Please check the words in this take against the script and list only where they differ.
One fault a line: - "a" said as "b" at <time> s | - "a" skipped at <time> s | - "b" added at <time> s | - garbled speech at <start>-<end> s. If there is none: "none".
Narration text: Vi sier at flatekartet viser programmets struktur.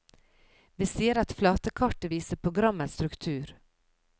none